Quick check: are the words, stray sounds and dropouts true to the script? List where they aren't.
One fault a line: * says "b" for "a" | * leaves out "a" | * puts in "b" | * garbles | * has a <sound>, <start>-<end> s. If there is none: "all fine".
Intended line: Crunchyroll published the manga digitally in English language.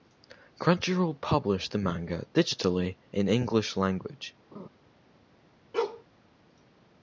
* has a laugh, 4.5-4.7 s
* has a bark, 5.7-6.0 s